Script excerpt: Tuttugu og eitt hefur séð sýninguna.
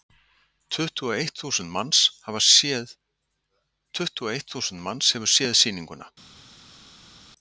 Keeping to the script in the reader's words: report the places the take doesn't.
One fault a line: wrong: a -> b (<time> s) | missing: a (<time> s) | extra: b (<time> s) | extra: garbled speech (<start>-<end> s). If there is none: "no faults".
extra: þúsund manns (1.4 s)